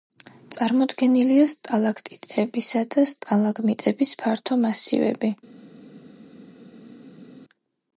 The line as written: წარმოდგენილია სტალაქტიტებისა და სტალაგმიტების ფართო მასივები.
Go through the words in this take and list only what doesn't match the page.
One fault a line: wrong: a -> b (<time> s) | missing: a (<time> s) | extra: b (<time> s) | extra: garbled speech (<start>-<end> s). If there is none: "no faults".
no faults